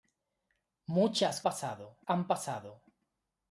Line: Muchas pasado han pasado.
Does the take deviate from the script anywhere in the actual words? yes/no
no